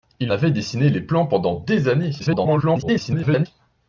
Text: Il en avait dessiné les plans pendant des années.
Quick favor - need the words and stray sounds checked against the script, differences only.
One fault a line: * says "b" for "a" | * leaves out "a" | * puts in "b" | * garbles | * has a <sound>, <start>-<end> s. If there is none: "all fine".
* leaves out "en"
* garbles